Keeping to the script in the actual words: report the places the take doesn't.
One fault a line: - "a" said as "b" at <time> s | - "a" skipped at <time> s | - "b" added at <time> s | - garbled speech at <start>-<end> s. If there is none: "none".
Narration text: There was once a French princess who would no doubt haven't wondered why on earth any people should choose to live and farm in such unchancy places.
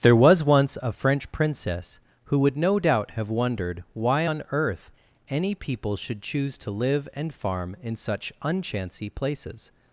- "haven't" said as "have" at 3.1 s